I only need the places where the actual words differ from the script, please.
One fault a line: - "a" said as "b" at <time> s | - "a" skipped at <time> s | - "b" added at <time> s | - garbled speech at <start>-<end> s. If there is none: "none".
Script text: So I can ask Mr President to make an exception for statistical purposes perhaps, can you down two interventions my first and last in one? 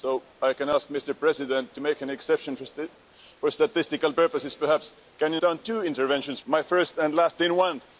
none